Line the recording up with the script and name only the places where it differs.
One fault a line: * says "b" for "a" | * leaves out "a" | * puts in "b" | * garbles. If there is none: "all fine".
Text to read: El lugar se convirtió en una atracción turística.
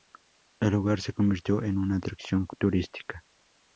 all fine